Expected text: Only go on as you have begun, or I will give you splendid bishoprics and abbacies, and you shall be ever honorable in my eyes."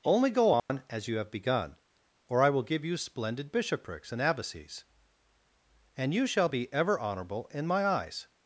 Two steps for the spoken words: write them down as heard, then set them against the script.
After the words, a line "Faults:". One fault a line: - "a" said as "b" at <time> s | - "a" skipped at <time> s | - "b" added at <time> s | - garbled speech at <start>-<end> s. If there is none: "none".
Only go on as you have begun, or I will give you splendid bishoprics and abbacies, and you shall be ever honorable in my eyes."
Faults:
none